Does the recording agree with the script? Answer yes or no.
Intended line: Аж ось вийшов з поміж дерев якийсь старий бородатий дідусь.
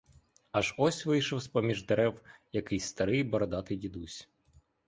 yes